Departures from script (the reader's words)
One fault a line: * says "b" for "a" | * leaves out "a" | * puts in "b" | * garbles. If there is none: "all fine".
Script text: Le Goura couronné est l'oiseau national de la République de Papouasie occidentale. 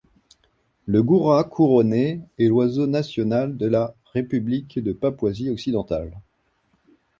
all fine